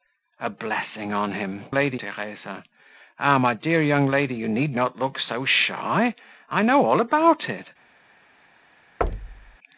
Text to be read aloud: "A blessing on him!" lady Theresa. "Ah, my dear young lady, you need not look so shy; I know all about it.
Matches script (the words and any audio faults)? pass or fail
fail